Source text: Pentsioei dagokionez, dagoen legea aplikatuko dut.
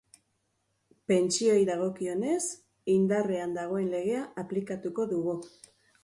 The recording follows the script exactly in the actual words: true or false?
false